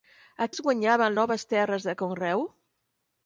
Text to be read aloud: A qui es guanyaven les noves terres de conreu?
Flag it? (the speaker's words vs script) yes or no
yes